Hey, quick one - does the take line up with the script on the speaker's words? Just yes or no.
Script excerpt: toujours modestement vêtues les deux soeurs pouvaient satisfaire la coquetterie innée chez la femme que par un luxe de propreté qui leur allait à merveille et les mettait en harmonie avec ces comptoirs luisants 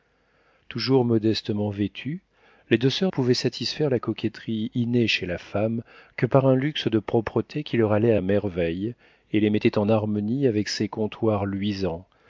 yes